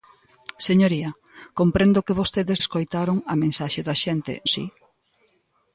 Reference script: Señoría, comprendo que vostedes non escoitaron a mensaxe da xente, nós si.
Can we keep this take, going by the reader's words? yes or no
no